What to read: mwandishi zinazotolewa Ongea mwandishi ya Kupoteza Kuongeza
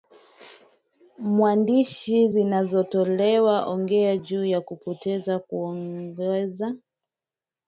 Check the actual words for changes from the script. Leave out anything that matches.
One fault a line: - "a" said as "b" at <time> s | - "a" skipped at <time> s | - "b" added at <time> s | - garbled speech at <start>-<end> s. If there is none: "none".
- "mwandishi" said as "juu" at 4.1 s